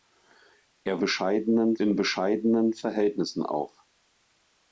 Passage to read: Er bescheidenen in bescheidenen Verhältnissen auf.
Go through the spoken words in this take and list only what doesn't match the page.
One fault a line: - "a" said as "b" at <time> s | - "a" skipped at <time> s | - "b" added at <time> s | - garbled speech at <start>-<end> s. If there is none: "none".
none